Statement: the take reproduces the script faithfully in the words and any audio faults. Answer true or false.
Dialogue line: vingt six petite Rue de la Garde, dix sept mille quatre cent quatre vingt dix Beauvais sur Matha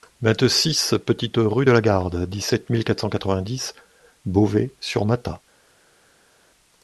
true